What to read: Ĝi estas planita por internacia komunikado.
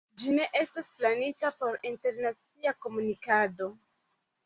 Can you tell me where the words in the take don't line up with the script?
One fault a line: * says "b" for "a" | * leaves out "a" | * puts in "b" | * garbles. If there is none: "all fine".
* puts in "ne"